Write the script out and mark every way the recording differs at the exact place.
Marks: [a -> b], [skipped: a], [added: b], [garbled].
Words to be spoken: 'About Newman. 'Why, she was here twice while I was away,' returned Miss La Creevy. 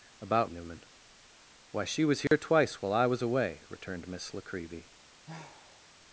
'About Newman. 'Why, she was here twice while I was away,' returned Miss La Creevy.